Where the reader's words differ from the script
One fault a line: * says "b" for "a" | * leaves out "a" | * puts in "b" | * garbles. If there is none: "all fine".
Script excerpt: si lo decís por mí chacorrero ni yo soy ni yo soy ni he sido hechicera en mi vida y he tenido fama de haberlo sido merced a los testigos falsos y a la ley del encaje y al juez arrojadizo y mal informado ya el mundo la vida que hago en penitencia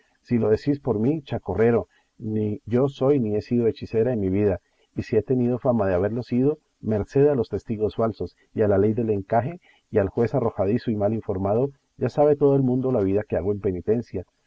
* leaves out "yo soy ni"
* puts in "si"
* puts in "sabe todo"